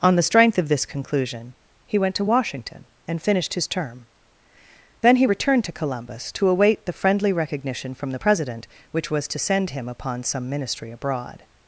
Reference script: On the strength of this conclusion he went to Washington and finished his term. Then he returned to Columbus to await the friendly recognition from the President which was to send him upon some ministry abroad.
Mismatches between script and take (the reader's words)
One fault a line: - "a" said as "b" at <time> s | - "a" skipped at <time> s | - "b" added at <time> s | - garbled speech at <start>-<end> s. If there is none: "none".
none